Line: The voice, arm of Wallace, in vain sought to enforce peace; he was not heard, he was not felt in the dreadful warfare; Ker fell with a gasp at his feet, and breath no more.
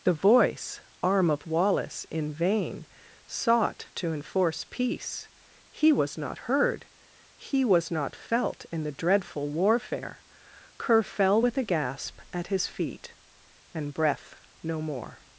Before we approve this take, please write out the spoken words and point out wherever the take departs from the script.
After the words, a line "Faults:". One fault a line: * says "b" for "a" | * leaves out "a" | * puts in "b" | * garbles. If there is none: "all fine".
The voice, arm of Wallace, in vain sought to enforce peace; he was not heard, he was not felt in the dreadful warfare; Ker fell with a gasp at his feet, and breath no more.
Faults:
all fine